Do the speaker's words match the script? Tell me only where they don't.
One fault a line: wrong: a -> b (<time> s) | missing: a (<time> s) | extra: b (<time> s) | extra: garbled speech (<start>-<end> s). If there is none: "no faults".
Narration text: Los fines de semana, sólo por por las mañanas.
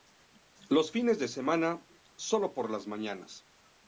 missing: por (2.7 s)